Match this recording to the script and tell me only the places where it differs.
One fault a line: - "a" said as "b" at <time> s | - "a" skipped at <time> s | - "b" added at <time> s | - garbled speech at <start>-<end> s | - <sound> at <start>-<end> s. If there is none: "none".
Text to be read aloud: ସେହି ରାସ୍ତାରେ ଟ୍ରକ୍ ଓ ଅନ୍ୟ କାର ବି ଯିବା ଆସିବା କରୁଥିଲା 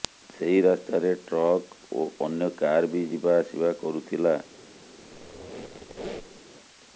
- squeak at 5.0-6.4 s